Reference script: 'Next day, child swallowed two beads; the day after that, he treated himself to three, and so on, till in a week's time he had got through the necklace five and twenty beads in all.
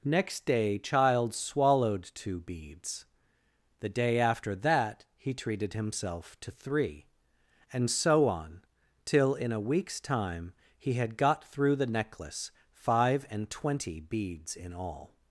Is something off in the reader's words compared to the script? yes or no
no